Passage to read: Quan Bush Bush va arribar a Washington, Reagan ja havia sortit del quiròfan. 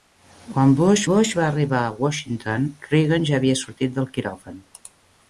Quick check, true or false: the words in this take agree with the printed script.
true